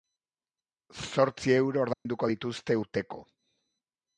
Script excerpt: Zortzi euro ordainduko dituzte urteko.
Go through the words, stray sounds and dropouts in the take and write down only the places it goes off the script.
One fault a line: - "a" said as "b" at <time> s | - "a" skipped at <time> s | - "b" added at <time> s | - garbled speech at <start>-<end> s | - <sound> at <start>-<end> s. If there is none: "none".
- dropout at 1.9-2.1 s